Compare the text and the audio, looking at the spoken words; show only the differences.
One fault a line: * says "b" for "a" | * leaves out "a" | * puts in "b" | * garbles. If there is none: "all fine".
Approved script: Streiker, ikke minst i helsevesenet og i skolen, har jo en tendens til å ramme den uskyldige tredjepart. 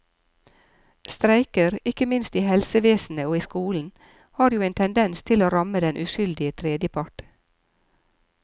all fine